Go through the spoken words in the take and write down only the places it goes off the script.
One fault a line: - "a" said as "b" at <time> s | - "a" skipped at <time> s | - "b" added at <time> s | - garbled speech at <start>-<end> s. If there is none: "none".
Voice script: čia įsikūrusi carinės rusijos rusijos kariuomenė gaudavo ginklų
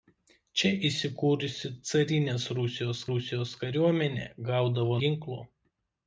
none